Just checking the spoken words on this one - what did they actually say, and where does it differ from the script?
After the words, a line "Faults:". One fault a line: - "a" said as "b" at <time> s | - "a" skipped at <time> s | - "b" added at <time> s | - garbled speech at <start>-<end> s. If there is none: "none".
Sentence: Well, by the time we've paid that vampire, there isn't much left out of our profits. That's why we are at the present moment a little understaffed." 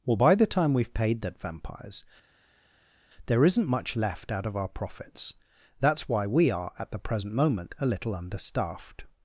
Well, by the time we've paid that vampires, there isn't much left out of our profits. That's why we are at the present moment a little understaffed."
Faults:
- "vampire" said as "vampires" at 1.4 s